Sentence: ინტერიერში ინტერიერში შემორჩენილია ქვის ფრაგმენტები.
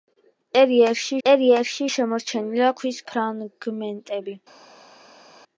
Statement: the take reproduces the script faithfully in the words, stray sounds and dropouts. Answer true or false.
true